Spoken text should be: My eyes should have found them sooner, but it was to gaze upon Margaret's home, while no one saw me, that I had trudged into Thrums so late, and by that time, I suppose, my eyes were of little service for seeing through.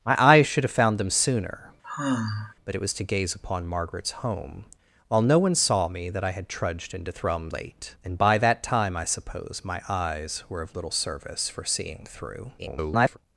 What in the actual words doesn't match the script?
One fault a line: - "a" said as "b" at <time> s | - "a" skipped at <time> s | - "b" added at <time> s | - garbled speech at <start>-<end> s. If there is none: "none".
- "so" skipped at 7.5 s
- garbled speech at 12.6-13.2 s